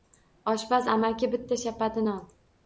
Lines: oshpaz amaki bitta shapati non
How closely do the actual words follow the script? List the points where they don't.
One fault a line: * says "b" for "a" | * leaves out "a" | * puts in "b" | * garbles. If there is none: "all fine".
all fine